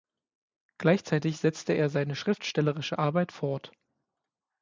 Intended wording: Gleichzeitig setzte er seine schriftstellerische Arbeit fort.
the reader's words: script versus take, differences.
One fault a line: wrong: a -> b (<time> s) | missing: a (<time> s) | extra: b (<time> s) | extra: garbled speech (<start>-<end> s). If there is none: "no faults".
no faults